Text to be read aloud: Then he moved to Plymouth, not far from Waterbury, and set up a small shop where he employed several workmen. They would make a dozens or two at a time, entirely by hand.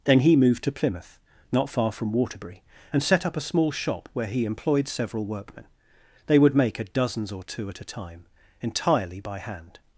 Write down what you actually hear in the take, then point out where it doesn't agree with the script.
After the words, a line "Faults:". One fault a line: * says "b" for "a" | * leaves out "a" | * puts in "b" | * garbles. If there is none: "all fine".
Then he moved to Plymouth, not far from Waterbury, and set up a small shop where he employed several workmen. They would make a dozens or two at a time, entirely by hand.
Faults:
all fine